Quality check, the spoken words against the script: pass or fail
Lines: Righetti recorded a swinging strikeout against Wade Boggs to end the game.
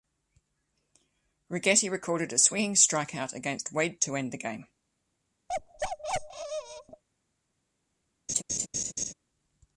fail